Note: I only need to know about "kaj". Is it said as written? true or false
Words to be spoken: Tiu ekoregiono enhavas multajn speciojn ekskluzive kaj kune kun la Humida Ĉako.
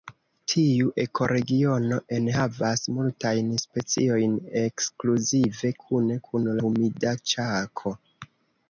false